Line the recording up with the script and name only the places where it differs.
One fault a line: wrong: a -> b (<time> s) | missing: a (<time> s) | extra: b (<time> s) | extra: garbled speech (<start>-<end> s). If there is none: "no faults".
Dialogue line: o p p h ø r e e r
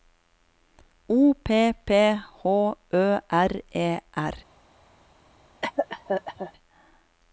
missing: e (4.0 s)